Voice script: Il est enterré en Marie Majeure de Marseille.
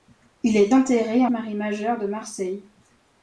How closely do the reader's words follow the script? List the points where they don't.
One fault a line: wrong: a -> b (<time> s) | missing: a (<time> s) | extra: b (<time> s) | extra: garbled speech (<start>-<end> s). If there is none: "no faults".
no faults